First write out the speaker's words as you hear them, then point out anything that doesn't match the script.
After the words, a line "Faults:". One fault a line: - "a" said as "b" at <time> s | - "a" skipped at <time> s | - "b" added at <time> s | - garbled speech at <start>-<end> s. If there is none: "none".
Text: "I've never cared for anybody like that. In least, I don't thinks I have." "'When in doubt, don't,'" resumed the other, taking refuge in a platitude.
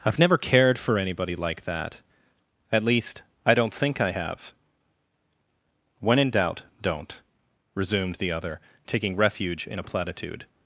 "I've never cared for anybody like that. At least, I don't think I have." "'When in doubt, don't,'" resumed the other, taking refuge in a platitude.
Faults:
- "In" said as "At" at 2.7 s
- "thinks" said as "think" at 3.7 s